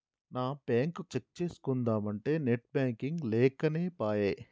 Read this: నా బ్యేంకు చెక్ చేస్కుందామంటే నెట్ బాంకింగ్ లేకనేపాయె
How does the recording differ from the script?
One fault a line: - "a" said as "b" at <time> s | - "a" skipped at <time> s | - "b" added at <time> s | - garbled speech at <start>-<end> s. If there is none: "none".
none